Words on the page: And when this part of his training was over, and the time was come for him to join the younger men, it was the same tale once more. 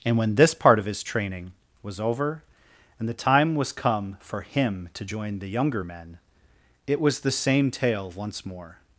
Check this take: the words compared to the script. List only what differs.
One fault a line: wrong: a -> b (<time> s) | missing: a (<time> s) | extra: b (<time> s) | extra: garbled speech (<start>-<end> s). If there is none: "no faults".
no faults